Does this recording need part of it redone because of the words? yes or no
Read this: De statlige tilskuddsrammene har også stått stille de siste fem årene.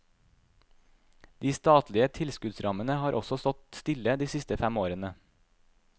no